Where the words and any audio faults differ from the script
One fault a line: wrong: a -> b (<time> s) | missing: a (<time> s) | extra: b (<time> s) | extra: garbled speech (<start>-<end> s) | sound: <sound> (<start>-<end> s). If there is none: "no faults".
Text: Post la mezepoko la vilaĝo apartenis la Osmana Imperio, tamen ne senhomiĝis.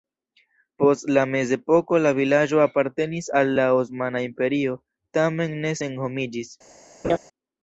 extra: al (3.4 s)
sound: laugh (7.0-7.2 s)